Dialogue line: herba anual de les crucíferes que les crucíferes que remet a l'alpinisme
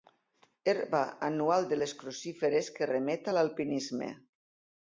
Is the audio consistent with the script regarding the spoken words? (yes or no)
no